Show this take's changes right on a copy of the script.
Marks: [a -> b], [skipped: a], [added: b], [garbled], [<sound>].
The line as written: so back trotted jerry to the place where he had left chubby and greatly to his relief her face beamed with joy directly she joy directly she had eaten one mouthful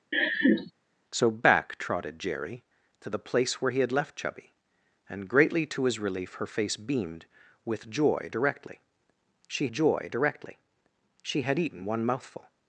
[laugh] so back trotted jerry to the place where he had left chubby and greatly to his relief her face beamed with joy directly she joy directly she had eaten one mouthful